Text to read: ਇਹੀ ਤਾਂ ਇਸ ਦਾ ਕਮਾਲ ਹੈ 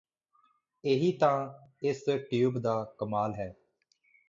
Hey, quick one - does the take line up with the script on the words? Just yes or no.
no